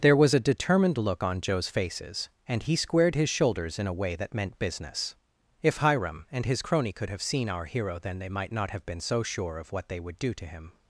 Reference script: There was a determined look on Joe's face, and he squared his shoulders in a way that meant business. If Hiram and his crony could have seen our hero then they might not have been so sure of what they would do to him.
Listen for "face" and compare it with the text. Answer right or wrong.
wrong